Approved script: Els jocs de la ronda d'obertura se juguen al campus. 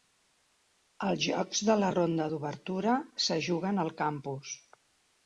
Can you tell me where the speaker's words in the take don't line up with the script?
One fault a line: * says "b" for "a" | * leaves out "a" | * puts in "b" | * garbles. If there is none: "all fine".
all fine